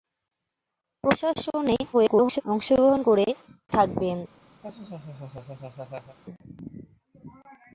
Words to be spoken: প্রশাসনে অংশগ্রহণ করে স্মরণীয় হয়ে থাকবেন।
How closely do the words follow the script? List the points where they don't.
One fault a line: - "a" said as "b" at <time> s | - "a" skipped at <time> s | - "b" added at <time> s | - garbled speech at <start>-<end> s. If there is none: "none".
- garbled speech at 1.9-2.4 s
- "স্মরণীয় হয়ে" skipped at 3.3 s